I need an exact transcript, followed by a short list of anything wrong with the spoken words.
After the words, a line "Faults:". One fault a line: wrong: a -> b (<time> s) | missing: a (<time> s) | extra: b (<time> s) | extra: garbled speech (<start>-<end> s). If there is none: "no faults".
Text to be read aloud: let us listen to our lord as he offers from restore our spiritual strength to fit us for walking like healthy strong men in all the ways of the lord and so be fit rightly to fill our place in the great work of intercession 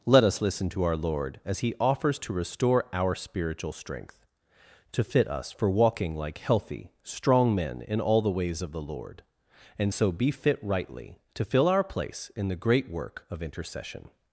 let us listen to our lord as he offers to restore our spiritual strength to fit us for walking like healthy strong men in all the ways of the lord and so be fit rightly to fill our place in the great work of intercession
Faults:
wrong: from -> to (2.2 s)